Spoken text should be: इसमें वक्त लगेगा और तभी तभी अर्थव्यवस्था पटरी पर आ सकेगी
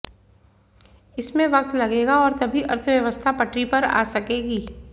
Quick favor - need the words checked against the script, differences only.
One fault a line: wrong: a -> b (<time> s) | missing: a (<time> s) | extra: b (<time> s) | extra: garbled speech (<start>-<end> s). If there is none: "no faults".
missing: तभी (2.6 s)